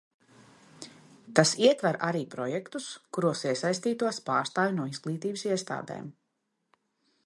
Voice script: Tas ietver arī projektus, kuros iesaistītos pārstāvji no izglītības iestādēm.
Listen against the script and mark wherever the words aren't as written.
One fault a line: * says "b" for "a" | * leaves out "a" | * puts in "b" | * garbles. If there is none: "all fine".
all fine